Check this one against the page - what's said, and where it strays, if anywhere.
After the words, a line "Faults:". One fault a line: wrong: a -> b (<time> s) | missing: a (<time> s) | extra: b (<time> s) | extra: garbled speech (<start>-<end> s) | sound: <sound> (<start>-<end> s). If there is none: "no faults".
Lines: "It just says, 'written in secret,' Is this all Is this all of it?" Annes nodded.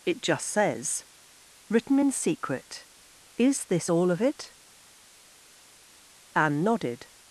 "It just says, 'written in secret,' Is this all of it?" Anne nodded.
Faults:
missing: Is this all (4.1 s)
wrong: Annes -> Anne (6.3 s)